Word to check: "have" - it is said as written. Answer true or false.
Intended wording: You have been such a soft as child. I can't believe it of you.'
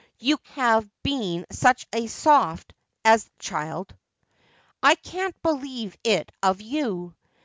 true